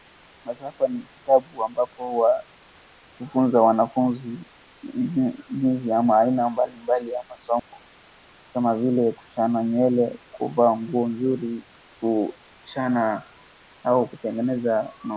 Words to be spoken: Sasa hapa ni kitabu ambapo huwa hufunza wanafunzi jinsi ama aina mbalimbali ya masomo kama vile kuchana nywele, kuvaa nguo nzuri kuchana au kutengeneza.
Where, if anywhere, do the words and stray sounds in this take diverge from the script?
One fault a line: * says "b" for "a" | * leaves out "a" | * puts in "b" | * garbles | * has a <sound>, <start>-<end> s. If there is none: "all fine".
* has a dropout, 7.6-7.7 s